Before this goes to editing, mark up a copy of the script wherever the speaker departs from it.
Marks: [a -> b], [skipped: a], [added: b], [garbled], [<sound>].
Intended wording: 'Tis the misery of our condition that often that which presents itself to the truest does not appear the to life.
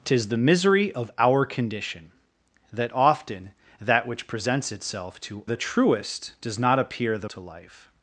'Tis the misery of our condition that often that which presents itself to the truest does not appear the to life.